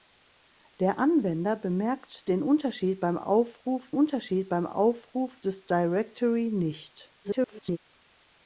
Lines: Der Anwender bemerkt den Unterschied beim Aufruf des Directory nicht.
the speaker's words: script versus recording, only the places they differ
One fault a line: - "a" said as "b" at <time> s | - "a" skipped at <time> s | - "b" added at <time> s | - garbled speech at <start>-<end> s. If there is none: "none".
- "Unterschied beim Aufruf" added at 3.9 s
- garbled speech at 7.2-7.8 s